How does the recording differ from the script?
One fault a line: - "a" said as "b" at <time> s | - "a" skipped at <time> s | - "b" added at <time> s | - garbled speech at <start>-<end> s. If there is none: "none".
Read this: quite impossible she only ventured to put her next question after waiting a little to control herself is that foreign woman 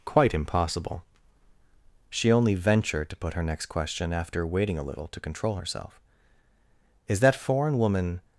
none